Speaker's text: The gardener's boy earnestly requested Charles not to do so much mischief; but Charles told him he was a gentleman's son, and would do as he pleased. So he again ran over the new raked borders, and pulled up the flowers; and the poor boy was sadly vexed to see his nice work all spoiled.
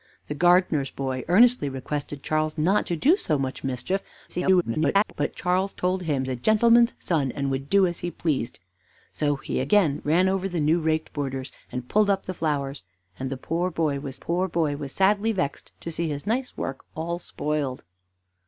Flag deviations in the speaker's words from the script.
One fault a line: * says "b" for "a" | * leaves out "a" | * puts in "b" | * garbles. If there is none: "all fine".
* garbles
* leaves out "he was"
* puts in "poor boy was"